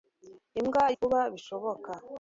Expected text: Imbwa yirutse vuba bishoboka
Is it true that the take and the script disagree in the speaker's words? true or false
true